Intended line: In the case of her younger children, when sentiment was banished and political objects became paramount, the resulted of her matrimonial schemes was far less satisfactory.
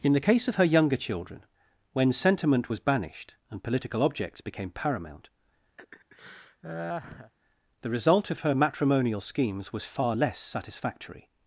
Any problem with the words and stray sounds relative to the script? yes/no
yes